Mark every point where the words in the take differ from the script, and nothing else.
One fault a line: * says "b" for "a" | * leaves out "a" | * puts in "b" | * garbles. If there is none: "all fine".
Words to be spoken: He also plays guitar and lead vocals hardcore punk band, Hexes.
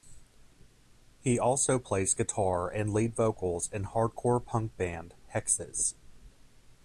* puts in "in"